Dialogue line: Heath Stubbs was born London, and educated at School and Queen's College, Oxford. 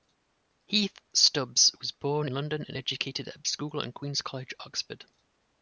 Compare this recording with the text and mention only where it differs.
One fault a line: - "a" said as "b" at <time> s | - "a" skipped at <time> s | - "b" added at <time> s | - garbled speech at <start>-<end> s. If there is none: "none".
none